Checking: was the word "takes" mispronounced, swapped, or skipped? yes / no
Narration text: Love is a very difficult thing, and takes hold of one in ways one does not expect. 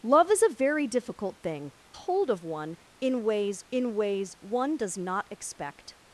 yes